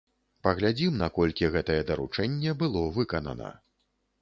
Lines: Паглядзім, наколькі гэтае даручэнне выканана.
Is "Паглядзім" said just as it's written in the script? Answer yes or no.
yes